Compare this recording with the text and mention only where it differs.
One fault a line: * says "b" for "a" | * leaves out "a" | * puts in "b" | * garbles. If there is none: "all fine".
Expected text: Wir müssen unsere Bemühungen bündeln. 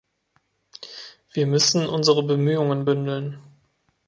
all fine